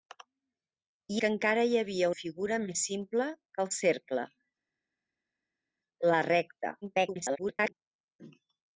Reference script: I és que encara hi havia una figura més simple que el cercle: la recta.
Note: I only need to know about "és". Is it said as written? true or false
false